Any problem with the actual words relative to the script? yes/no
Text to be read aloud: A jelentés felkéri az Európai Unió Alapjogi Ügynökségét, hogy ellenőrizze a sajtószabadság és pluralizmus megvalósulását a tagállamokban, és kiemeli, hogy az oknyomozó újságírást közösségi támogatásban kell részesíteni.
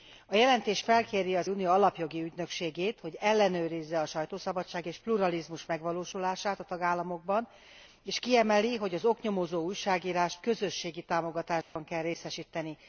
yes